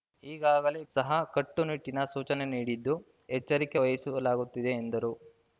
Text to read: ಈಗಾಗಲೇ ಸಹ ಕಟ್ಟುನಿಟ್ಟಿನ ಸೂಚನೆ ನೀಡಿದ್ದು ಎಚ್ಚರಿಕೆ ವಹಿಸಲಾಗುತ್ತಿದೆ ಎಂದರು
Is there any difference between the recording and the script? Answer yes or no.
no